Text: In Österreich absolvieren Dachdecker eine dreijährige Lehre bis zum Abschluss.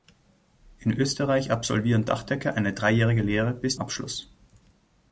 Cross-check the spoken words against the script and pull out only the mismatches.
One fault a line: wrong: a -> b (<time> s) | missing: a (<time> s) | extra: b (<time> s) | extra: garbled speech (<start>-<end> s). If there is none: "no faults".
missing: zum (3.8 s)